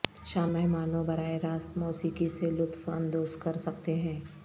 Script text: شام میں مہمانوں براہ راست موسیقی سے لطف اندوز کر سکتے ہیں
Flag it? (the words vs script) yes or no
yes